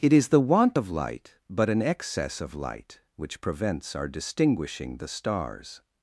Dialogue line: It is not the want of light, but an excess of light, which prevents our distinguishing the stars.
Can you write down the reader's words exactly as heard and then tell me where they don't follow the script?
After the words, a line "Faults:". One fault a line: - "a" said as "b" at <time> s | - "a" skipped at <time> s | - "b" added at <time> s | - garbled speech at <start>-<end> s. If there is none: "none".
It is the want of light, but an excess of light, which prevents our distinguishing the stars.
Faults:
- "not" skipped at 0.3 s